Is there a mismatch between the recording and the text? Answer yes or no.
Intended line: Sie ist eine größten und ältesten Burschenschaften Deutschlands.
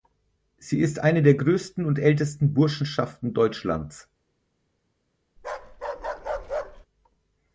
yes